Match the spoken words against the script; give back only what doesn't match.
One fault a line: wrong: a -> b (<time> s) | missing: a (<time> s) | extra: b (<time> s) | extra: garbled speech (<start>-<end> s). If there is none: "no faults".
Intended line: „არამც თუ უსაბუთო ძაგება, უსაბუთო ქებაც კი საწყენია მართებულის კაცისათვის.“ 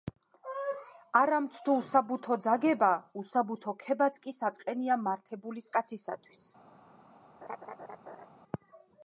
no faults